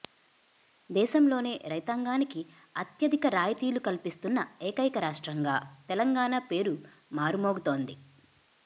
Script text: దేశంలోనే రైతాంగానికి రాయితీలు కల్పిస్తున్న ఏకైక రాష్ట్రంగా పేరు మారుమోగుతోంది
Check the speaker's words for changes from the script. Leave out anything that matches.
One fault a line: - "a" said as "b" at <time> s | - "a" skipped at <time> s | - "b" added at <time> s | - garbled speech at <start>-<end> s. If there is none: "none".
- "అత్యధిక" added at 2.8 s
- "తెలంగాణ" added at 5.9 s